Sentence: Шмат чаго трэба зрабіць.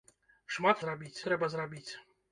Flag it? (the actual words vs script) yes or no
yes